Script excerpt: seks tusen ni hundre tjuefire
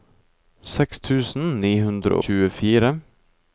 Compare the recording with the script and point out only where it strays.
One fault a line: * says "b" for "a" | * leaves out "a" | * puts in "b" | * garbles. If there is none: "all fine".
all fine